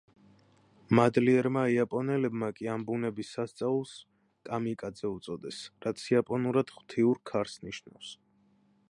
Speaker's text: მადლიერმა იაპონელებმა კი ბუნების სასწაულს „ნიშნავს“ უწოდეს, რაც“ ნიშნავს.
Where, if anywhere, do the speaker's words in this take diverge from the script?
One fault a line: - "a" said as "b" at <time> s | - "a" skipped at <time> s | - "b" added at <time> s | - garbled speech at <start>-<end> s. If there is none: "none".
- "ამ" added at 2.8 s
- "ნიშნავს" said as "კამიკაძე" at 4.5 s
- "იაპონურად ღვთიურ ქარს" added at 6.1 s